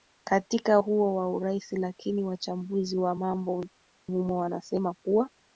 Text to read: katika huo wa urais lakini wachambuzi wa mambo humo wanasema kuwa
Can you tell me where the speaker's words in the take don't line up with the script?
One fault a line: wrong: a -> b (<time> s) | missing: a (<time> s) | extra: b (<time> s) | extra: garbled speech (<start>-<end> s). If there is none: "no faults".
no faults